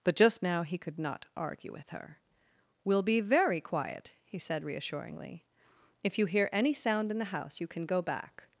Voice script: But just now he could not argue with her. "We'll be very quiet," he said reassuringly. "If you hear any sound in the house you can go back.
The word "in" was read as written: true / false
true